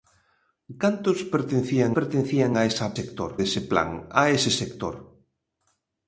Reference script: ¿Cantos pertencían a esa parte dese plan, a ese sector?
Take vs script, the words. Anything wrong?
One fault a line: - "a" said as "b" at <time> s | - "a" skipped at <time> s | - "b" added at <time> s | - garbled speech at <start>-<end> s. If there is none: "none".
- "pertencían" added at 2.0 s
- "parte" said as "sector" at 3.0 s